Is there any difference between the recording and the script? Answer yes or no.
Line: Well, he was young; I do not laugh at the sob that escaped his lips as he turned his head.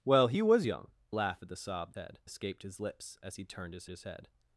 yes